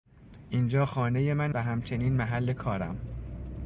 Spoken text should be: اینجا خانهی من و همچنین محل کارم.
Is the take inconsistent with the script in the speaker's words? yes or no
no